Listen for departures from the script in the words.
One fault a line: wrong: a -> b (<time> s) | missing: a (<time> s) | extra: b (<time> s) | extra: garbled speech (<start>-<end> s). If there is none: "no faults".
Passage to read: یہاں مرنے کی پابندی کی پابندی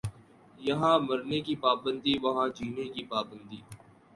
extra: وہاں جینے (2.2 s)